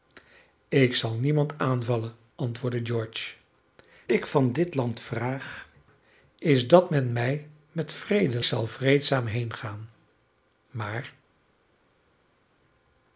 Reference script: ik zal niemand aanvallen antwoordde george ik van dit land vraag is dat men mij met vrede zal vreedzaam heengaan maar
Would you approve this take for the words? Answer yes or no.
yes